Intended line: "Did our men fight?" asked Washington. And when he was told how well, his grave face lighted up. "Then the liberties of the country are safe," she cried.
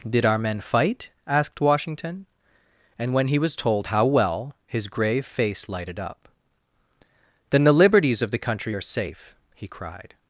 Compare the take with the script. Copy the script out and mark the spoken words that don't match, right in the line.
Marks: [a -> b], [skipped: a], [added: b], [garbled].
"Did our men fight?" asked Washington. And when he was told how well, his grave face lighted up. "Then the liberties of the country are safe," [she -> he] cried.